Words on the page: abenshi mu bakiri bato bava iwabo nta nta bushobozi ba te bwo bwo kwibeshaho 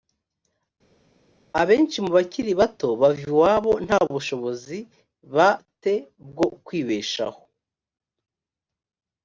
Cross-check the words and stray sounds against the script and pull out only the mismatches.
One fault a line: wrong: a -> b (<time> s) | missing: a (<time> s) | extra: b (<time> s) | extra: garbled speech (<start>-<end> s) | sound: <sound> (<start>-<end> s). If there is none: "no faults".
missing: nta (4.0 s)
missing: bwo (6.5 s)